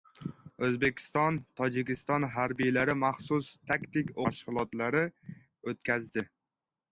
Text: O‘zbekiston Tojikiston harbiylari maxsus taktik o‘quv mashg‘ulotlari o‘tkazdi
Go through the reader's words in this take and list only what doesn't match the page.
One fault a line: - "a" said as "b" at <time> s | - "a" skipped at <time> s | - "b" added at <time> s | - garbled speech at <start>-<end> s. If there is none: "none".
- "o‘quv" skipped at 4.2 s